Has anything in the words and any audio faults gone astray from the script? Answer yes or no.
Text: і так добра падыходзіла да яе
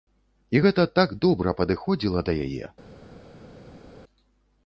yes